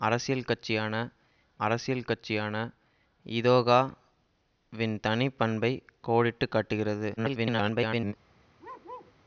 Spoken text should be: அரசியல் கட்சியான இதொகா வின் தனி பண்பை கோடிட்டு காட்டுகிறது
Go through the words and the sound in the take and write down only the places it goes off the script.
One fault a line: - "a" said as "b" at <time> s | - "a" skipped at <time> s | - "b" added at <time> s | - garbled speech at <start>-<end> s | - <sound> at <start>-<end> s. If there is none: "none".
- "அரசியல் கட்சியான" added at 1.6 s
- garbled speech at 7.2-8.1 s
- bark at 8.6-9.1 s